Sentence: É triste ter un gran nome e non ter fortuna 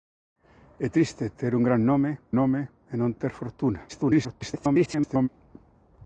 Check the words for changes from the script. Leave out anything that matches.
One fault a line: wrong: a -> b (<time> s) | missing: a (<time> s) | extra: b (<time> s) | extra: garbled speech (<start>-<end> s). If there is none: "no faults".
extra: nome (2.4 s)
extra: garbled speech (3.9-5.3 s)